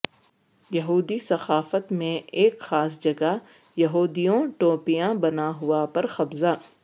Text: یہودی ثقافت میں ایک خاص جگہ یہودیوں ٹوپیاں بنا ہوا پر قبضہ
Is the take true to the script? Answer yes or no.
yes